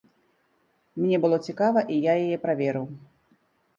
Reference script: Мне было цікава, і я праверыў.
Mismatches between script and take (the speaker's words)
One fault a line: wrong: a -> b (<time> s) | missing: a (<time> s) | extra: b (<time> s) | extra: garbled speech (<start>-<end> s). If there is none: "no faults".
extra: яе (2.2 s)